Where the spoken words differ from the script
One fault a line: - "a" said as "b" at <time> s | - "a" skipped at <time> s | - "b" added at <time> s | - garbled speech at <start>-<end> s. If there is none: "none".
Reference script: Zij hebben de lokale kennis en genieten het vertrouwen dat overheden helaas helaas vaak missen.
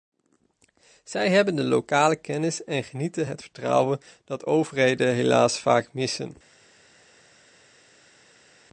- "helaas" skipped at 5.6 s